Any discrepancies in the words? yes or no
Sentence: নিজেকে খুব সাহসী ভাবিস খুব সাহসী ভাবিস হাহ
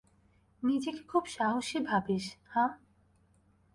yes